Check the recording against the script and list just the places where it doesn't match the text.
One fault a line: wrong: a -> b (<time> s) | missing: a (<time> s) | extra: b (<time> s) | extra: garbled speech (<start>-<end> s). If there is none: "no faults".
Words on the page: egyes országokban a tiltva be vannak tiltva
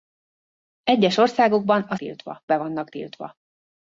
no faults